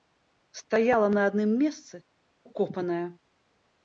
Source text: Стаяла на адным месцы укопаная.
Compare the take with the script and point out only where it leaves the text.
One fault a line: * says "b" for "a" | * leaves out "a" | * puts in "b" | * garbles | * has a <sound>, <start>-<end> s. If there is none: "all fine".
all fine